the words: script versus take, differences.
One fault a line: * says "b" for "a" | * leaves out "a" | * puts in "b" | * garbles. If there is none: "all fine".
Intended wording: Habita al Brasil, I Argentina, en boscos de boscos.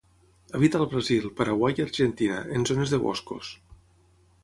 * puts in "Paraguai"
* says "zones" for "boscos"